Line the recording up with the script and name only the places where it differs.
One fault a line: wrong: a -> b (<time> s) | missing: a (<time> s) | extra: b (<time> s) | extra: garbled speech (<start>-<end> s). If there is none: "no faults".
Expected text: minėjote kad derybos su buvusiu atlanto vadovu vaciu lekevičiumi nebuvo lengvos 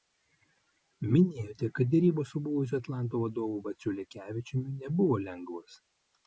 no faults